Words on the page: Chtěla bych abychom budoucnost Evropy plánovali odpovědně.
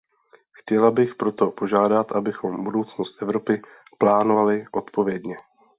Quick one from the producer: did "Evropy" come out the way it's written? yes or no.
yes